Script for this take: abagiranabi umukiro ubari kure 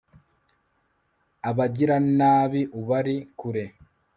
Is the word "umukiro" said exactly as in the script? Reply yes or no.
no